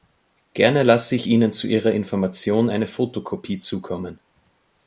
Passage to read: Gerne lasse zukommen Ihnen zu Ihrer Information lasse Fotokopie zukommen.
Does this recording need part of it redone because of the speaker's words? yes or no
yes